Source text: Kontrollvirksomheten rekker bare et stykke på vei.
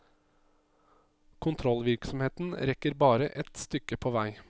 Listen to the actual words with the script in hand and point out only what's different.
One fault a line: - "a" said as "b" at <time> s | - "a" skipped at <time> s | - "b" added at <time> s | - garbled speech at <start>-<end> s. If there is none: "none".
none